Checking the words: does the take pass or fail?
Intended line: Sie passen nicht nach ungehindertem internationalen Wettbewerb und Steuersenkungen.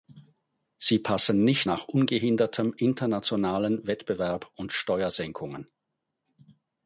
pass